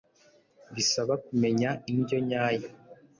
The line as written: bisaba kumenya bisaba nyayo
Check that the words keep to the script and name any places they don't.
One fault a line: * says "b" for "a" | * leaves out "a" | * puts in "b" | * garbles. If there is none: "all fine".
* says "indyo" for "bisaba"